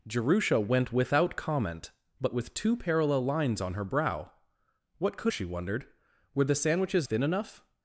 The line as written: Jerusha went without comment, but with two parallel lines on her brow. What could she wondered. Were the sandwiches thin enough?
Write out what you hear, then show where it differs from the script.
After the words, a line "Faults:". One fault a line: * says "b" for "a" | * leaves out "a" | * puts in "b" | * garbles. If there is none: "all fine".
Jerusha went without comment, but with two parallel lines on her brow. What could she wondered. Were the sandwiches thin enough?
Faults:
all fine